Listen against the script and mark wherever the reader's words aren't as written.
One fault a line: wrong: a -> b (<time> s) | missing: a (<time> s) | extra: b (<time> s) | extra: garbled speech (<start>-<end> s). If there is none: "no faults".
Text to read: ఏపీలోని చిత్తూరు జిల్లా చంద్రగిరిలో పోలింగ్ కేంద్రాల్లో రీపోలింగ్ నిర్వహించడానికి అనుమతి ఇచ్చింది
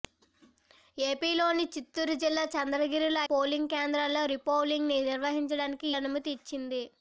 no faults